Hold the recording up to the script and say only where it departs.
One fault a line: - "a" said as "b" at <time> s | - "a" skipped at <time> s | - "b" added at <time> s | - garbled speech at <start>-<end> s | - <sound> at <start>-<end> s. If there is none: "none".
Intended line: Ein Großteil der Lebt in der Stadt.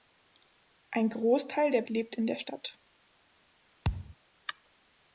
- thud at 3.8-4.2 s